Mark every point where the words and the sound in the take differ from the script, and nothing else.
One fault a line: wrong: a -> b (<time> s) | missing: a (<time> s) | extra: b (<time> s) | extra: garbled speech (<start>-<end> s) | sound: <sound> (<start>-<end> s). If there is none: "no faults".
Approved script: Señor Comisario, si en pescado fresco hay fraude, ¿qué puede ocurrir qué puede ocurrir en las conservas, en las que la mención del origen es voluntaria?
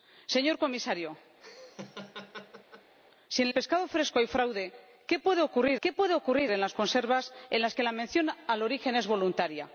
sound: laugh (1.4-2.9 s)